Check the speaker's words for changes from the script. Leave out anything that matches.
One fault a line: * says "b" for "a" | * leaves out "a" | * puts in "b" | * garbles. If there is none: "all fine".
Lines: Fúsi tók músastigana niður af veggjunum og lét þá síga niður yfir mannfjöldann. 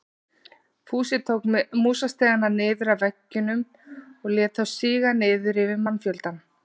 all fine